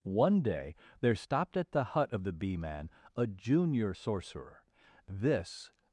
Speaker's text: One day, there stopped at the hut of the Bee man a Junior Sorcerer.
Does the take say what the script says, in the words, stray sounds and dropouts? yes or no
no